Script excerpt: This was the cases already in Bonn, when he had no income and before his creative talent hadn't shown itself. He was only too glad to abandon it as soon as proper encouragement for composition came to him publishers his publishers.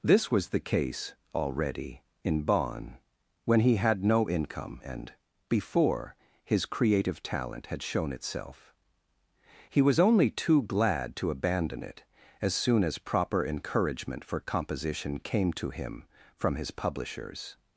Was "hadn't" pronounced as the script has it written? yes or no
no